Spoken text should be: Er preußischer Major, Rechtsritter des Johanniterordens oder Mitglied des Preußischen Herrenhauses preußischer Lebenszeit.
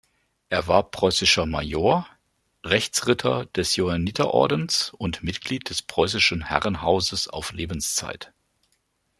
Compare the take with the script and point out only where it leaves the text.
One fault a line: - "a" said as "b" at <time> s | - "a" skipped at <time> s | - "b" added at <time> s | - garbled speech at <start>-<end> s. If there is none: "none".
- "war" added at 0.7 s
- "oder" said as "und" at 5.0 s
- "preußischer" said as "auf" at 7.3 s